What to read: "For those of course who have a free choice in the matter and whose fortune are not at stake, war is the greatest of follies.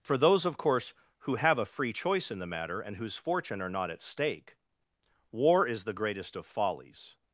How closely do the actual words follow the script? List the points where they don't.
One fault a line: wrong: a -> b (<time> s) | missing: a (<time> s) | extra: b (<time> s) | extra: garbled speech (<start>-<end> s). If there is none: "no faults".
no faults